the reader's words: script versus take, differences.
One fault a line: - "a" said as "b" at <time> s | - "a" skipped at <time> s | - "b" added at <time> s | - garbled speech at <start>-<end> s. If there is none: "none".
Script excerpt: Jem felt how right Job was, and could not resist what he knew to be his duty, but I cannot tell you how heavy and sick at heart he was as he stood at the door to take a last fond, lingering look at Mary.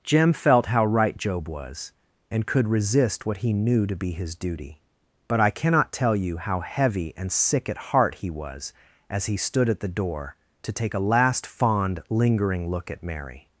- "not" skipped at 2.7 s